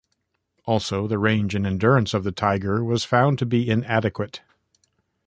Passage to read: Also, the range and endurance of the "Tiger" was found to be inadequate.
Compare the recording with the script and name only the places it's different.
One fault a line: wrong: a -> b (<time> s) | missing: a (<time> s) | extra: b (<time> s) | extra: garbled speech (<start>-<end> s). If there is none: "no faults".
no faults